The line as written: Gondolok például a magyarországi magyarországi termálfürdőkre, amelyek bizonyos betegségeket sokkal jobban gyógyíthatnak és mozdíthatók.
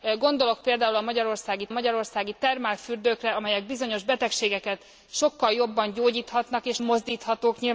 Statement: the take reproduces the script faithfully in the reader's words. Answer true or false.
true